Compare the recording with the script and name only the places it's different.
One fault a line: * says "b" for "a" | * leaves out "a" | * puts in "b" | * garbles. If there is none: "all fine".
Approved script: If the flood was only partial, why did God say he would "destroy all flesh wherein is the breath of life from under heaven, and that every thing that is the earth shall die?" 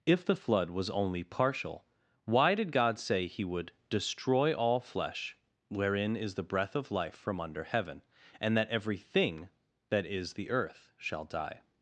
all fine